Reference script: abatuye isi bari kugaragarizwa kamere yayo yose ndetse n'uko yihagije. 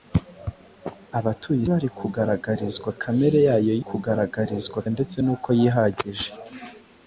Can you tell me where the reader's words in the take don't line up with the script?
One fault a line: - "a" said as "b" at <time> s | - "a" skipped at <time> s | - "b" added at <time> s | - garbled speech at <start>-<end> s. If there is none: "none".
- "isi" skipped at 1.6 s
- "yose" said as "kugaragarizwa" at 3.9 s